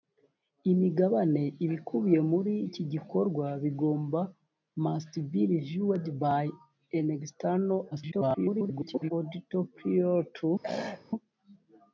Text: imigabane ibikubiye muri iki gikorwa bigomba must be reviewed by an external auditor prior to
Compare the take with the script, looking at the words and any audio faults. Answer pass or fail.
fail